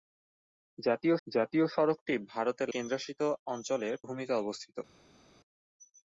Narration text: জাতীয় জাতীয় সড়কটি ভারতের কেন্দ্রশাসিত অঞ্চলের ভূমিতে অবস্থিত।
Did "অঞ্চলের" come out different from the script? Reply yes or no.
no